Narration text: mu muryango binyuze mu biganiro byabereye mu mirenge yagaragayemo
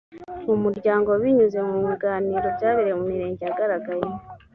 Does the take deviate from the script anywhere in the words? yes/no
no